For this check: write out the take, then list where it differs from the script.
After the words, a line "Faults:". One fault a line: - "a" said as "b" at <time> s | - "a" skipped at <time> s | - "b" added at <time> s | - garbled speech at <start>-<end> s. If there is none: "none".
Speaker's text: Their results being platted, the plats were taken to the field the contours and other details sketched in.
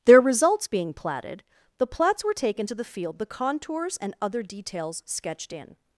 Their results being platted, the plats were taken to the field the contours and other details sketched in.
Faults:
none